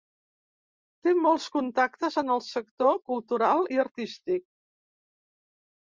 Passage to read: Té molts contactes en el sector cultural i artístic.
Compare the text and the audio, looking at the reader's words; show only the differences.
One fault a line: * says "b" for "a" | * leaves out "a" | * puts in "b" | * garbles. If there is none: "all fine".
all fine